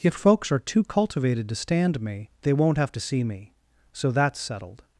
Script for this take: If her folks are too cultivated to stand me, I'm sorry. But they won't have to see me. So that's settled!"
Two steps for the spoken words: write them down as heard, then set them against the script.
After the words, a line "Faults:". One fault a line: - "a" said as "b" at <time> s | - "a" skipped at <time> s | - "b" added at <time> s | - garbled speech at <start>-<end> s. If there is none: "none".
If folks are too cultivated to stand me, They won't have to see me. So that's settled!"
Faults:
- "her" skipped at 0.1 s
- "I'm sorry But" skipped at 2.3 s